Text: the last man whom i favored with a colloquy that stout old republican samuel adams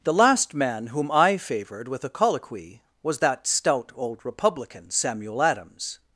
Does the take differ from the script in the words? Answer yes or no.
yes